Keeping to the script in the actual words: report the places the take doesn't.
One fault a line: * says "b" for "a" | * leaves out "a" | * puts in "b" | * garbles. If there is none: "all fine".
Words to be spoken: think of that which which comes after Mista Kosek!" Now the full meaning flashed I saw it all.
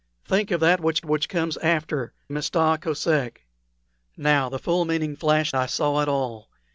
all fine